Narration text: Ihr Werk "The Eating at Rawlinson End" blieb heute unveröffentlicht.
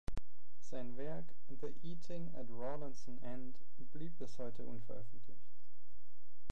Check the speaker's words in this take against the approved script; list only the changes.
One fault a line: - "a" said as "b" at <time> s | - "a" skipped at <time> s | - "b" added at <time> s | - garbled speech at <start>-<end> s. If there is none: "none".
- "Ihr" said as "Sein" at 0.6 s
- "bis" added at 4.2 s